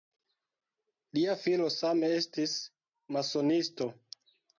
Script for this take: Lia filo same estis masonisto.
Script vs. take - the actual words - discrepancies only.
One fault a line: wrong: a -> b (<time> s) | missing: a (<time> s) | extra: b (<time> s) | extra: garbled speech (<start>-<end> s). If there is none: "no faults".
no faults